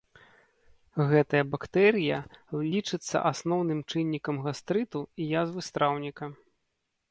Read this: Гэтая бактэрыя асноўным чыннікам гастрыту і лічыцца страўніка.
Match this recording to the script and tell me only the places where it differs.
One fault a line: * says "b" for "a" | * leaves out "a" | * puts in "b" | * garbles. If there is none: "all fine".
* puts in "лічыцца"
* says "язвы" for "лічыцца"